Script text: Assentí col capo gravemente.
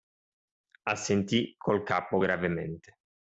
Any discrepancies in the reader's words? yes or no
no